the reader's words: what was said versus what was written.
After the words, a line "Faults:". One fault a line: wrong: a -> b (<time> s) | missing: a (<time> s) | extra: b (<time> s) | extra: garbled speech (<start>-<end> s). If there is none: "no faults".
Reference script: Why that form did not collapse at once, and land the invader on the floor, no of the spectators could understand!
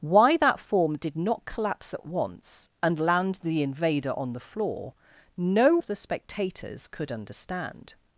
Why that form did not collapse at once, and land the invader on the floor, no of the spectators could understand!
Faults:
no faults